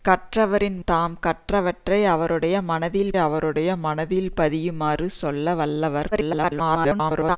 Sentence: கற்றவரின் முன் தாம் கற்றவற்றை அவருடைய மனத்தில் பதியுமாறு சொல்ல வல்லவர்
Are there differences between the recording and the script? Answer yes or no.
yes